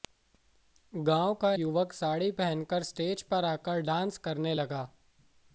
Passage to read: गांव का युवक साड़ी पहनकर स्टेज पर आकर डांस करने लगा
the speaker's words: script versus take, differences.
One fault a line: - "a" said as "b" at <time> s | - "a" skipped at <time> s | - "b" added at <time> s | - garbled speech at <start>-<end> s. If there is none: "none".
none